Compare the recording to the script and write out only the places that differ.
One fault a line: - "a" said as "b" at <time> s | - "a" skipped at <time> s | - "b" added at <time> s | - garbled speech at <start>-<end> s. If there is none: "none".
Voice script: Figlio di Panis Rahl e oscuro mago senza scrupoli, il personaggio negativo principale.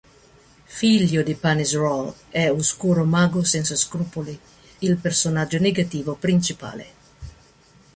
none